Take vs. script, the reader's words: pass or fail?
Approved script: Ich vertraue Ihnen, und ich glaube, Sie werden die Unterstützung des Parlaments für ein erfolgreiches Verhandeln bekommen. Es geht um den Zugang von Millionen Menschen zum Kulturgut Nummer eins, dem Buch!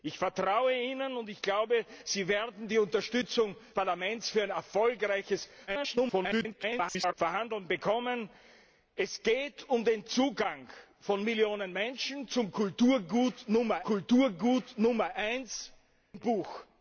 fail